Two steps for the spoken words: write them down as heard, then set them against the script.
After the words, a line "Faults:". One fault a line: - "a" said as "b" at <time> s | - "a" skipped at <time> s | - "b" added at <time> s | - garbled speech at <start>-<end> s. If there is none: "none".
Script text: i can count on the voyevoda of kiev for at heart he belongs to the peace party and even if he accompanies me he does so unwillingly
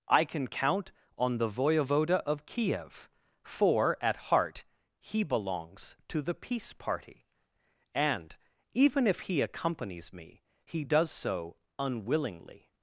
i can count on the voyevoda of kiev for at heart he belongs to the peace party and even if he accompanies me he does so unwillingly
Faults:
none